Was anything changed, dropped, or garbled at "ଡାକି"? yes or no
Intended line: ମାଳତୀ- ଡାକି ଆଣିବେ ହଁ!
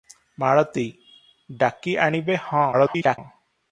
no